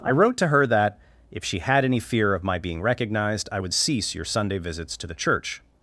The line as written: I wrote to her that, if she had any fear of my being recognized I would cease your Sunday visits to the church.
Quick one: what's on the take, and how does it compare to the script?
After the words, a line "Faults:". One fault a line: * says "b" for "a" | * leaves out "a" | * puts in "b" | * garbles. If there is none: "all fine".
I wrote to her that, if she had any fear of my being recognized I would cease your Sunday visits to the church.
Faults:
all fine